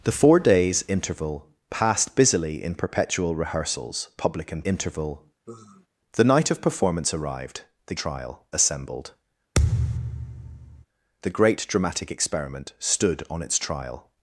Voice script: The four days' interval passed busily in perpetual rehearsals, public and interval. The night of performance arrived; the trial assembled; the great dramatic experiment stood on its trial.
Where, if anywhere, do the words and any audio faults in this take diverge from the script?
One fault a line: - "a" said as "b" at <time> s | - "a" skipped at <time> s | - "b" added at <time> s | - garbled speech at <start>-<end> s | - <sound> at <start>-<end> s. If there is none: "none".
- sigh at 5.5-5.9 s
- thud at 9.6-10.9 s